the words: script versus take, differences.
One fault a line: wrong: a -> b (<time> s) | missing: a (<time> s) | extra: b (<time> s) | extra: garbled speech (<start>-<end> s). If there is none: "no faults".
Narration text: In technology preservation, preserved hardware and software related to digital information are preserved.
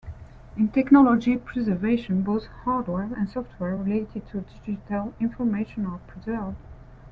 wrong: preserved -> both (2.2 s)